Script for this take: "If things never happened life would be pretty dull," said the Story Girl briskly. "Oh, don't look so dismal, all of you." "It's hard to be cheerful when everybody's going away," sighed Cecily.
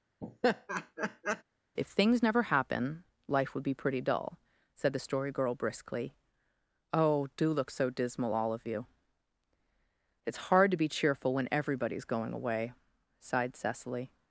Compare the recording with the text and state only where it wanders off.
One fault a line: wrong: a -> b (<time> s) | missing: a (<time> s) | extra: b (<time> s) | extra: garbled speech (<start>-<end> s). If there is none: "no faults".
wrong: happened -> happen (2.4 s)
wrong: don't -> do (7.4 s)